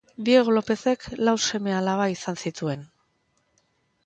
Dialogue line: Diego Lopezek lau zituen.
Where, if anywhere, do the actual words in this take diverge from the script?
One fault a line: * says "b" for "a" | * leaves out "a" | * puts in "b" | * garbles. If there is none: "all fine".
* puts in "seme alaba izan"